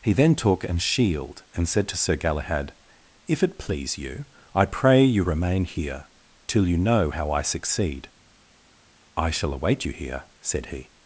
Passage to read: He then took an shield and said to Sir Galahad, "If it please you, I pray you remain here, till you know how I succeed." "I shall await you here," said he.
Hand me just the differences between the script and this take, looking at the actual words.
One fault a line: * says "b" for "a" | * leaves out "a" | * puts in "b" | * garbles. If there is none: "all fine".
all fine